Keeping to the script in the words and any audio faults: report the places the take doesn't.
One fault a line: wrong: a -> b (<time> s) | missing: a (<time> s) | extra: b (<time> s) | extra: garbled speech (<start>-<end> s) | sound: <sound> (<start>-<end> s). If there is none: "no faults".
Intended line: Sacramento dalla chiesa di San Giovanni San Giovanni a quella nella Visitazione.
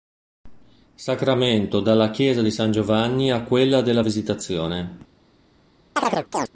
missing: San Giovanni (3.3 s)
wrong: nella -> della (3.8 s)
sound: chirp (6.0-6.5 s)